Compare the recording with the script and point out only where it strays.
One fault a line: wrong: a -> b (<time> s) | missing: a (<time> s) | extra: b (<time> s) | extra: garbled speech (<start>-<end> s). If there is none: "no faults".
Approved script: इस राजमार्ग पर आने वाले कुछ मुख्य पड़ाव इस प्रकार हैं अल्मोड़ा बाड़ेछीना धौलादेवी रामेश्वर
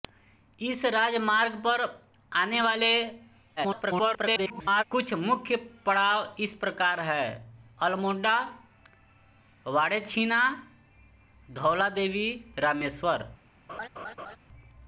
extra: garbled speech (3.6-4.8 s)